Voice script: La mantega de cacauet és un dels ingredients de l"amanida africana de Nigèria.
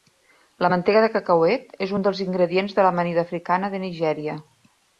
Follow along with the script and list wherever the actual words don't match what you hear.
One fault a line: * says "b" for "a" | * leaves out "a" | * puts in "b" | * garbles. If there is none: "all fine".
all fine